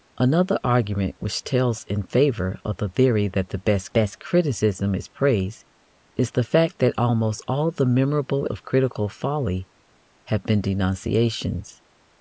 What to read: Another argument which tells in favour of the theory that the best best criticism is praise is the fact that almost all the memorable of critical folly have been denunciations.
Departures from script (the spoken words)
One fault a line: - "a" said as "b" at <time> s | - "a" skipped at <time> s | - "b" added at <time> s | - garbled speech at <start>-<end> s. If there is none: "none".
none